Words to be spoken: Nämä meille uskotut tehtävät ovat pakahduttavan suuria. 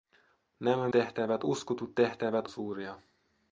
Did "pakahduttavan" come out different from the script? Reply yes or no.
yes